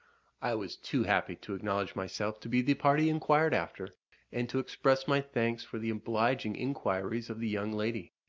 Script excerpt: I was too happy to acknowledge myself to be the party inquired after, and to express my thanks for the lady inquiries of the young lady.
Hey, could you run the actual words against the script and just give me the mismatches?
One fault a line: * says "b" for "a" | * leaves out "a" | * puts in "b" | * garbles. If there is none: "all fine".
* says "obliging" for "lady"